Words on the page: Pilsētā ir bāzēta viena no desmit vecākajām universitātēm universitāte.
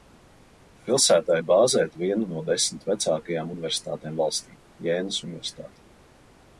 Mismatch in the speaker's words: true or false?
true